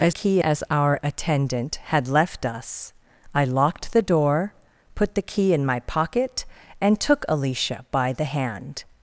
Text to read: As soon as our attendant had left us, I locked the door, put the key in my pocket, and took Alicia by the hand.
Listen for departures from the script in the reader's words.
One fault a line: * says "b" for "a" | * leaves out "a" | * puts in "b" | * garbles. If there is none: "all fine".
* says "key" for "soon"